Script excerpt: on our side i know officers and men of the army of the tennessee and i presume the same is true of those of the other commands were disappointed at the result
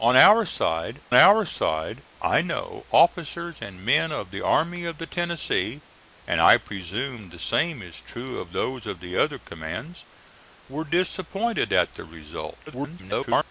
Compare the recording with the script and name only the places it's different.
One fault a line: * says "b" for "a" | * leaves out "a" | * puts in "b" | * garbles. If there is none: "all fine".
* puts in "our side"
* garbles